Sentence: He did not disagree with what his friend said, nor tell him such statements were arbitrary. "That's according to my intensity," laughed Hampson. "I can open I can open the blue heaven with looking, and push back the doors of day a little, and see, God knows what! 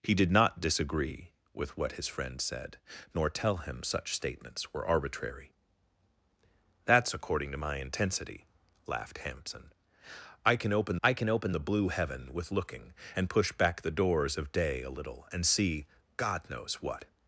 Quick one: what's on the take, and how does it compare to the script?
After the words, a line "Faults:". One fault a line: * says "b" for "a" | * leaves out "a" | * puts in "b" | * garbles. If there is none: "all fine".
He did not disagree with what his friend said, nor tell him such statements were arbitrary. "That's according to my intensity," laughed Hampson. "I can open I can open the blue heaven with looking, and push back the doors of day a little, and see, God knows what!
Faults:
all fine